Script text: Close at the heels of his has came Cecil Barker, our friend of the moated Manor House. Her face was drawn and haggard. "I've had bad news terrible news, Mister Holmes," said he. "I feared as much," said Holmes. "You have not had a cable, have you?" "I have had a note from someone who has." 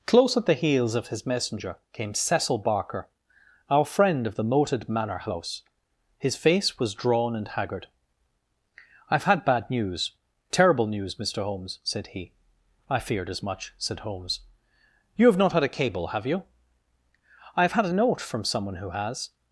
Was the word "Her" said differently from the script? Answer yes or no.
yes